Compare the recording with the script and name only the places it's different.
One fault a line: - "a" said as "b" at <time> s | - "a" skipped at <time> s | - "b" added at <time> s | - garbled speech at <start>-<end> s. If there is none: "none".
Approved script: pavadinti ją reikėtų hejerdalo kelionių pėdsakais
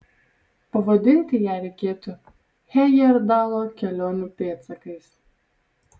none